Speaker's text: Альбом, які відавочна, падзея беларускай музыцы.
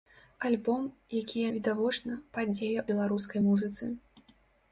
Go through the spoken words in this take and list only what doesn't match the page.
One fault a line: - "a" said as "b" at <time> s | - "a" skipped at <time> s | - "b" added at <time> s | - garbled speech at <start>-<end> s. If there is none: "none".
none